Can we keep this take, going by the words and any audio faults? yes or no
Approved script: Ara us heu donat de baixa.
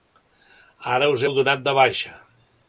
yes